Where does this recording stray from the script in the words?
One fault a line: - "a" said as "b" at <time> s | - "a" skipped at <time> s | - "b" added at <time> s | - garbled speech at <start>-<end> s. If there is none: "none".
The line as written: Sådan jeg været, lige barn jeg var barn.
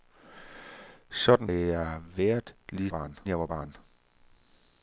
none